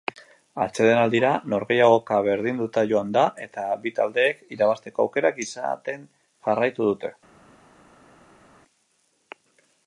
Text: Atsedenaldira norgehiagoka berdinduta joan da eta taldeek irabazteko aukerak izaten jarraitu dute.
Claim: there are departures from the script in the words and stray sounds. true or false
true